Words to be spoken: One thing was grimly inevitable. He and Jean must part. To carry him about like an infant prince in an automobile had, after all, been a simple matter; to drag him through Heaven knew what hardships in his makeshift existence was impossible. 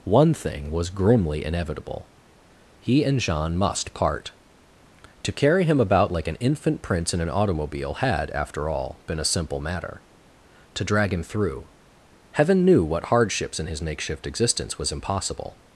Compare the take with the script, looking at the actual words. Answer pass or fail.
pass